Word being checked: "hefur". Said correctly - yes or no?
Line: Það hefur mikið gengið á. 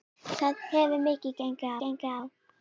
yes